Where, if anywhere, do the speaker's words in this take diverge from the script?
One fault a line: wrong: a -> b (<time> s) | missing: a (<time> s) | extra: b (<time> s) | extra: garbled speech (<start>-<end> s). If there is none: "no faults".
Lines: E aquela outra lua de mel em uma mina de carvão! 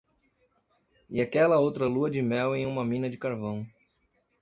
no faults